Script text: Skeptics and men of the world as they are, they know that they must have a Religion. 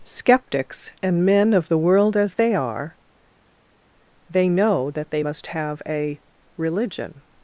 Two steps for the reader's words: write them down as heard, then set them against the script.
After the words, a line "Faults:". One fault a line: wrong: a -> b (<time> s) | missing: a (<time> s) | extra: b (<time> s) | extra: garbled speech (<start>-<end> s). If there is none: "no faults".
Skeptics and men of the world as they are, they know that they must have a Religion.
Faults:
no faults